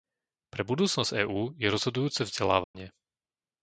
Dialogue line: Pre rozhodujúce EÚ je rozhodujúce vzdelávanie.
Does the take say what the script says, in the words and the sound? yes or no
no